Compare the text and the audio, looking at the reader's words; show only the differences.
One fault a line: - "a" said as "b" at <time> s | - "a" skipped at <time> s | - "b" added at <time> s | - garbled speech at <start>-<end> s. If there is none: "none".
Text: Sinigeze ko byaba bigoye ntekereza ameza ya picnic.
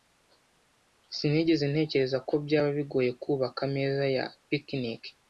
- "ntekereza" added at 1.7 s
- "ntekereza" said as "kubaka" at 3.2 s